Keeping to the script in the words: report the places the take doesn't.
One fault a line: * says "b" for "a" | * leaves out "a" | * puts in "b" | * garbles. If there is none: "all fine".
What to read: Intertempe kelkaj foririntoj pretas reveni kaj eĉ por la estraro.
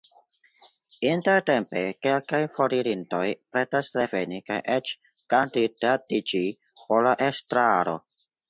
* puts in "kandidatiĝi"